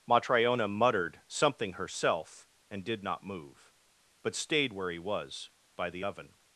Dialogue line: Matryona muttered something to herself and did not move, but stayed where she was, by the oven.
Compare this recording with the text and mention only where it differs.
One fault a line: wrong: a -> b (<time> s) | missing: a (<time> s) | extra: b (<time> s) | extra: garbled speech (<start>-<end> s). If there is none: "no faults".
missing: to (1.7 s)
wrong: she -> he (4.9 s)